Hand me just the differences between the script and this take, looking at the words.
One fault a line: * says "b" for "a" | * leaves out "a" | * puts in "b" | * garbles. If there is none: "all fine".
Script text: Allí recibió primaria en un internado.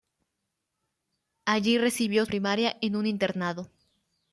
all fine